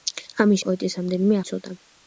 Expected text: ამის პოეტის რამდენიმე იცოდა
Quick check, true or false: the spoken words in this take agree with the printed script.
true